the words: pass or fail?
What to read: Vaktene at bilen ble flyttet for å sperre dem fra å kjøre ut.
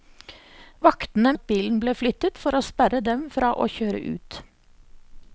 pass